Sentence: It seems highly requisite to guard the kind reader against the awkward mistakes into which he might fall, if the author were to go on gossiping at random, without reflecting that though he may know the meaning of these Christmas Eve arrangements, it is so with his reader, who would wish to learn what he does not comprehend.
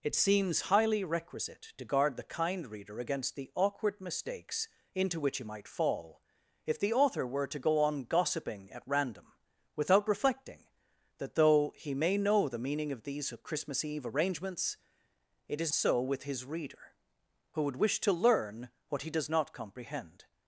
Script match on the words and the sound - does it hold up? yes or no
yes